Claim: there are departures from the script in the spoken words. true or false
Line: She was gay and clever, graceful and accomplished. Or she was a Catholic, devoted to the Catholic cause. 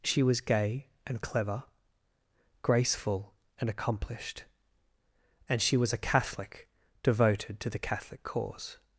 true